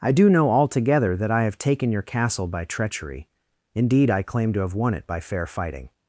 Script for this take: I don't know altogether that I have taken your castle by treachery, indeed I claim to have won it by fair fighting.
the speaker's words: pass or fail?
fail